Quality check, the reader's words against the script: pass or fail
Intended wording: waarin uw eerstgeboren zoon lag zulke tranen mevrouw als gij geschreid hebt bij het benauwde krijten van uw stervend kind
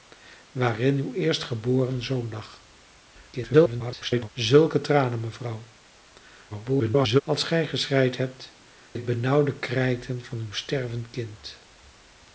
fail